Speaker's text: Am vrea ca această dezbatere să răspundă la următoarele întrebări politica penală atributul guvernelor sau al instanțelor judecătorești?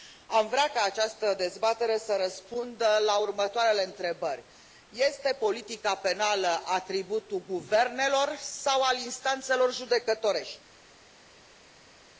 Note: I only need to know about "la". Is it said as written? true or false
true